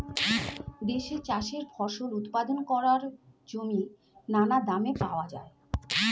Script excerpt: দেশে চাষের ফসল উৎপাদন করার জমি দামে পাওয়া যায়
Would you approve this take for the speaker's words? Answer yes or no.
no